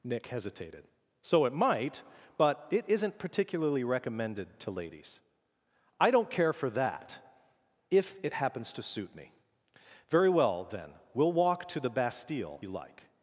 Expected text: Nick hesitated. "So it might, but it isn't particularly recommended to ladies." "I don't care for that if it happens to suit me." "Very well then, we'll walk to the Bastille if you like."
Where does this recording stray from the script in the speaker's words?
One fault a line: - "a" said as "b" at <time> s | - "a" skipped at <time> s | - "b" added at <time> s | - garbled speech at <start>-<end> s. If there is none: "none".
- "if" skipped at 12.6 s